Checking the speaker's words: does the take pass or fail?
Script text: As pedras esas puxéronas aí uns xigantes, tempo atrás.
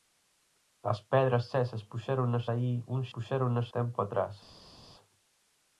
fail